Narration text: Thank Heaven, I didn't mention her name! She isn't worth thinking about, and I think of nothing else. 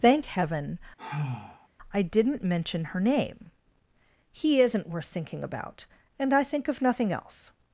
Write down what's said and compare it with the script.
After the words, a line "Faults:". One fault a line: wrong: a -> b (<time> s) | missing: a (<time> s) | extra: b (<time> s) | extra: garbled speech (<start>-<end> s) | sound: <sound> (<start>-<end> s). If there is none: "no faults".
Thank Heaven, I didn't mention her name! He isn't worth thinking about, and I think of nothing else.
Faults:
sound: sigh (1.0-1.7 s)
wrong: She -> He (4.3 s)